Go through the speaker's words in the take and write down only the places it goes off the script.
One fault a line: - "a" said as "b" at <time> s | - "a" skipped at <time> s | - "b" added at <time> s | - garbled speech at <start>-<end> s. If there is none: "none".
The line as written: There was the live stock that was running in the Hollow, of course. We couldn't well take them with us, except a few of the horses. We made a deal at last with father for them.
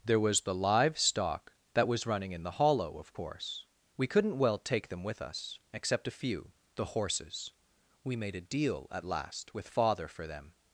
- "of" skipped at 6.5 s